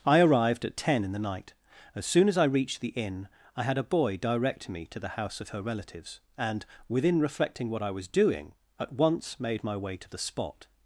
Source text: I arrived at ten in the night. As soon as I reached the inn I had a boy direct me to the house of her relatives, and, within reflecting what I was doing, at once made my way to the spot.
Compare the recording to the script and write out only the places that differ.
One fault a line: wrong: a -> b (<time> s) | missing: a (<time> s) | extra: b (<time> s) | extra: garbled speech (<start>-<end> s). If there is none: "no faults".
no faults